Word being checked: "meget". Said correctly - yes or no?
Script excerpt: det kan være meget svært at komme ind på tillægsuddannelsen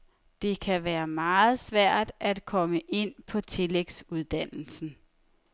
yes